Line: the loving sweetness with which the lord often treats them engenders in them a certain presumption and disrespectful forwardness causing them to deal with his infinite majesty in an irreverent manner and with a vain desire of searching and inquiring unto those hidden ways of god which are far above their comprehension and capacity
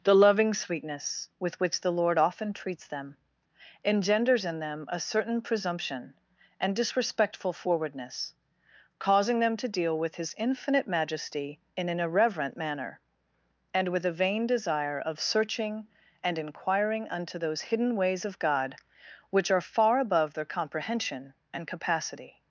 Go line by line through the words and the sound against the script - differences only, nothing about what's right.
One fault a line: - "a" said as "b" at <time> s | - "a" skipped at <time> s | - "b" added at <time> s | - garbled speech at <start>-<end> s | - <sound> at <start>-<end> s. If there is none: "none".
none